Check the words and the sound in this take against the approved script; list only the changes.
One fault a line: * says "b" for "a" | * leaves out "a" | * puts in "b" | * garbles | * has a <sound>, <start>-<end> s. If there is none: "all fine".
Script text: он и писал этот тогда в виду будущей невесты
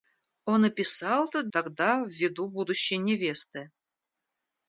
all fine